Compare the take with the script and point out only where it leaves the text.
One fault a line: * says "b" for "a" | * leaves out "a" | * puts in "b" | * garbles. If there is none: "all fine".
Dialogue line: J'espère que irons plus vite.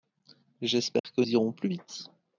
all fine